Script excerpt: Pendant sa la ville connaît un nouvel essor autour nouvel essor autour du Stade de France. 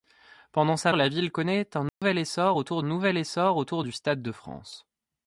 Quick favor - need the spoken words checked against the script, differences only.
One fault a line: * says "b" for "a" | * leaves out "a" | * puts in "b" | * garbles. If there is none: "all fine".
all fine